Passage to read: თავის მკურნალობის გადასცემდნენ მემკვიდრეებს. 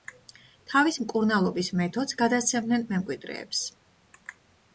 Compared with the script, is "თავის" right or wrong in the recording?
right